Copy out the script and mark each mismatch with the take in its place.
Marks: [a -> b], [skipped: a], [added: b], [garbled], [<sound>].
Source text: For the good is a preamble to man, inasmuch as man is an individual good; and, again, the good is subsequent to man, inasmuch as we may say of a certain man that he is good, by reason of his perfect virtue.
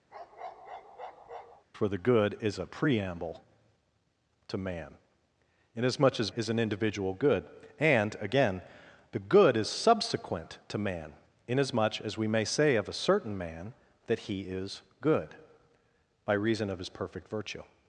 [bark] For the good is a preamble to man, inasmuch as [skipped: man] is an individual good; and, again, the good is subsequent to man, inasmuch as we may say of a certain man that he is good, by reason of his perfect virtue.